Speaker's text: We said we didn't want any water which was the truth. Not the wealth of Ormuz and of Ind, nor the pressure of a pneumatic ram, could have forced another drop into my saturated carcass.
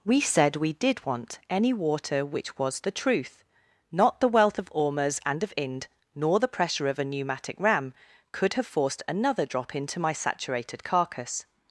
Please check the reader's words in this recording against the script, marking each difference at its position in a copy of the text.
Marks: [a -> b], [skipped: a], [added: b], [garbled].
We said we [didn't -> did] want any water which was the truth. Not the wealth of Ormuz and of Ind, nor the pressure of a pneumatic ram, could have forced another drop into my saturated carcass.